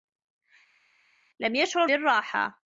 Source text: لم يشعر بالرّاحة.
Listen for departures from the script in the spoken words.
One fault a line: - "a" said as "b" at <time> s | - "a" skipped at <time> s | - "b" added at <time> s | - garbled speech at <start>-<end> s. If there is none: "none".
none